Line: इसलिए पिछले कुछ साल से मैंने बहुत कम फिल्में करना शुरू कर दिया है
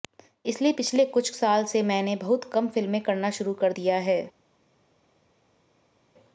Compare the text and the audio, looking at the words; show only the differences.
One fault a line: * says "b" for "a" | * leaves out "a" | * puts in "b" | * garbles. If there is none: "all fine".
all fine